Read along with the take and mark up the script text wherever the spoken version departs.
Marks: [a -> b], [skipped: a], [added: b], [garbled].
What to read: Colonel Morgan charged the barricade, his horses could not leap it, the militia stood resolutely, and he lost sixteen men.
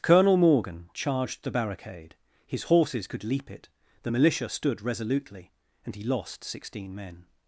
Colonel Morgan charged the barricade, his horses could [skipped: not] leap it, the militia stood resolutely, and he lost sixteen men.